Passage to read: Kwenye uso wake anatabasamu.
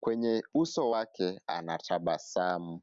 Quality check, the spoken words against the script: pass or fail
pass